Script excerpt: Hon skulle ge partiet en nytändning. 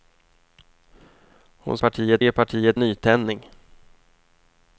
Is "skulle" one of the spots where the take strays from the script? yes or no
yes